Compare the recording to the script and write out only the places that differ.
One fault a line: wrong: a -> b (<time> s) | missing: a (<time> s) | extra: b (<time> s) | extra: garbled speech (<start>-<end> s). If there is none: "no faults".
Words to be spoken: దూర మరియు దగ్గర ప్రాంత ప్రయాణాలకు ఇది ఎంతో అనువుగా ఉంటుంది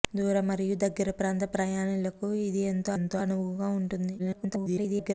extra: ఎంతో (3.0 s)
extra: garbled speech (4.2-5.1 s)